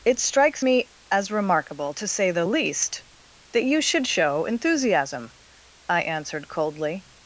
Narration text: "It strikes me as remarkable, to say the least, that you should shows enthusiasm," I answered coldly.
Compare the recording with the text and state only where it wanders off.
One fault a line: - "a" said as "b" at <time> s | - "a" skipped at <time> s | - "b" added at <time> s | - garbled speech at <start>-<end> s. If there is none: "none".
- "shows" said as "show" at 4.1 s